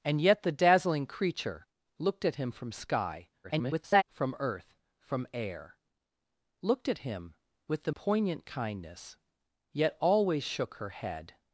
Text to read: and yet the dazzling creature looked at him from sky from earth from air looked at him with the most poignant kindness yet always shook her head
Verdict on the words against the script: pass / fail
fail